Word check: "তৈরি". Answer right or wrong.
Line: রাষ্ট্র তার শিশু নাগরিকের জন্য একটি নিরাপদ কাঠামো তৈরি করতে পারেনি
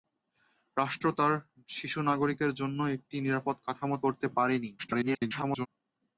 wrong